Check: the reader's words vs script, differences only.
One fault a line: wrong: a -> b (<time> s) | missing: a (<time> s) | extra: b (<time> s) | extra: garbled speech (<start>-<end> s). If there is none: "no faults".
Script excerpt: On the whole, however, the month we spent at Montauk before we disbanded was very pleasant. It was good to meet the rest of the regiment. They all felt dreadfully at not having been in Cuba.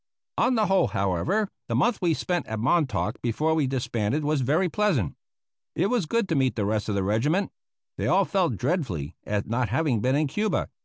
no faults